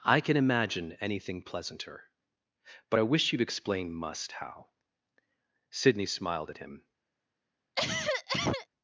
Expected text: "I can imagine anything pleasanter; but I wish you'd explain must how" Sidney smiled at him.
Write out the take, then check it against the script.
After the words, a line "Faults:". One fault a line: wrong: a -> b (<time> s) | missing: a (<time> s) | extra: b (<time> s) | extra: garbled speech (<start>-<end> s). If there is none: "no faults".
"I can imagine anything pleasanter; but I wish you'd explain must how" Sidney smiled at him.
Faults:
no faults